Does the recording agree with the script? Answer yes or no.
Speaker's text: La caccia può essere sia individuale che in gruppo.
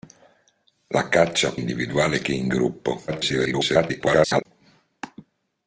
no